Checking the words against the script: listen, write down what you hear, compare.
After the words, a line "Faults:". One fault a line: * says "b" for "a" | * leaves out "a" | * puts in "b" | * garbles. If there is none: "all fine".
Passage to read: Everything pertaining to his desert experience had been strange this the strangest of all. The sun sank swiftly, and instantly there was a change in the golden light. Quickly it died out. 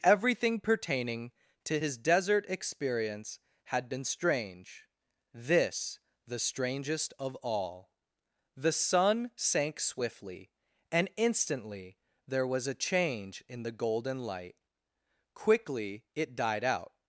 Everything pertaining to his desert experience had been strange this the strangest of all. The sun sank swiftly, and instantly there was a change in the golden light. Quickly it died out.
Faults:
all fine